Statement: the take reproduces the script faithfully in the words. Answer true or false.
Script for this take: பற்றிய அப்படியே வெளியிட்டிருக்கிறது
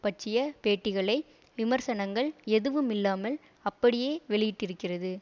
false